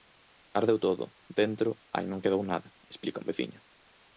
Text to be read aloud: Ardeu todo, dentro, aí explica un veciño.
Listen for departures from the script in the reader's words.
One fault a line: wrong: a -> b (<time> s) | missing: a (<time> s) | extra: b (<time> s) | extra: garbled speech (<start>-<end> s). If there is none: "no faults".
extra: non quedou nada (2.1 s)